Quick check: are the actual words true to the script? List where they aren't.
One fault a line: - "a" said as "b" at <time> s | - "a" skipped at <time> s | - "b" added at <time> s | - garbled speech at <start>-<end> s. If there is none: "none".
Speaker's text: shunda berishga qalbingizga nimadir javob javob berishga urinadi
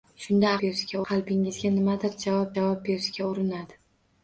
none